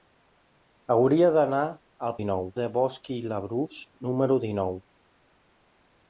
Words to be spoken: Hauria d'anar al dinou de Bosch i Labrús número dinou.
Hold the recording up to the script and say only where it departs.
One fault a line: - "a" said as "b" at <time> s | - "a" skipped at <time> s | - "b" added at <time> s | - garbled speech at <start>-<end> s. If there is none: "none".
none